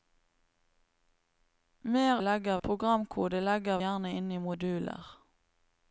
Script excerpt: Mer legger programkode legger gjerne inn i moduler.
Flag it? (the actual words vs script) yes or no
no